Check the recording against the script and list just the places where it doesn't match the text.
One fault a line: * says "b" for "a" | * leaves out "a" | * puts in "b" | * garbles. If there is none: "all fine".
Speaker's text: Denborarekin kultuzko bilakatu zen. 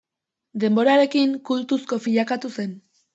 all fine